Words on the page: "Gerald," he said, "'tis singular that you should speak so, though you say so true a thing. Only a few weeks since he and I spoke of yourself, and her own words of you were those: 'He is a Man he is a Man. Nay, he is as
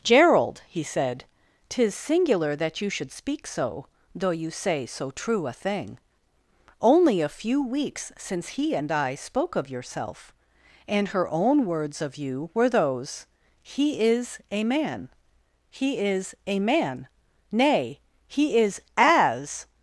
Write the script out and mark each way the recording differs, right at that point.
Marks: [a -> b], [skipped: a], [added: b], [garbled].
"Gerald," he said, "'tis singular that you should speak so, though you say so true a thing. Only a few weeks since he and I spoke of yourself, and her own words of you were those: 'He is a Man he is a Man. Nay, he is as